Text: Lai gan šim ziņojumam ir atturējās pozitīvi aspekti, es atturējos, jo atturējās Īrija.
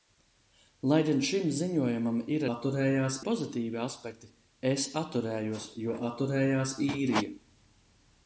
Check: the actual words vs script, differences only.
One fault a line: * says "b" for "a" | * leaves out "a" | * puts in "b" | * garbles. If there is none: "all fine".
all fine